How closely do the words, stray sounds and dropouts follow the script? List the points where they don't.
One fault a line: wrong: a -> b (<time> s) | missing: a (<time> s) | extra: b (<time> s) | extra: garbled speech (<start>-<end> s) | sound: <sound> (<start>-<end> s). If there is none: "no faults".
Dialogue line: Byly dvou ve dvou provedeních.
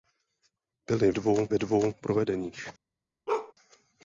sound: bark (3.3-3.5 s)